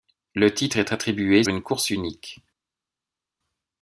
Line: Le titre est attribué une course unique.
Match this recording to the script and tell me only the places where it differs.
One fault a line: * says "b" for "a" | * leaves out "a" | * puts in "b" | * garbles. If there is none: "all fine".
all fine